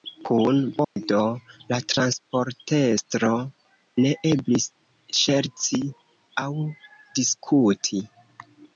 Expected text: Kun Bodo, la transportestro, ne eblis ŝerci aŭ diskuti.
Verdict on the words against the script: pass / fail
pass